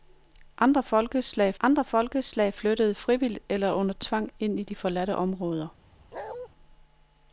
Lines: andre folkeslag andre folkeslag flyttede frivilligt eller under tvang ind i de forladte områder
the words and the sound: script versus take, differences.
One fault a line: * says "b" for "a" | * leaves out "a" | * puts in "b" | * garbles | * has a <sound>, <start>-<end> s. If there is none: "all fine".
* has a bark, 6.1-6.5 s